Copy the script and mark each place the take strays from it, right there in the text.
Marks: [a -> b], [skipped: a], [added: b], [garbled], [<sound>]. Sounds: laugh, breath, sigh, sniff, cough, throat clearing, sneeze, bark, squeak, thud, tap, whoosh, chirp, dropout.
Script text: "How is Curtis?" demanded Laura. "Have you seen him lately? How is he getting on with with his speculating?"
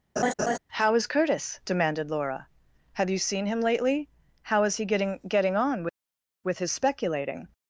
[laugh] "How is Curtis?" demanded Laura. "Have you seen him lately? How is he getting [added: getting] on with with his speculating?"